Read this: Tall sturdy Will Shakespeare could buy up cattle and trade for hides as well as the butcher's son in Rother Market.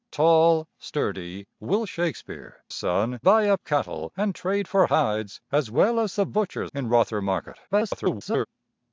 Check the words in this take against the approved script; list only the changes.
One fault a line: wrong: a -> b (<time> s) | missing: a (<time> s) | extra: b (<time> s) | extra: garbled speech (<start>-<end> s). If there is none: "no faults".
wrong: could -> son (2.7 s)
missing: son (6.7 s)
extra: garbled speech (7.7-8.5 s)